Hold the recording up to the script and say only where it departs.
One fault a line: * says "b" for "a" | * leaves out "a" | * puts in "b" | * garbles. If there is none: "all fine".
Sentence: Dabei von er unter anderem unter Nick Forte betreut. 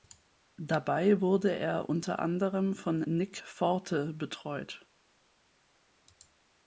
* says "wurde" for "von"
* says "von" for "unter"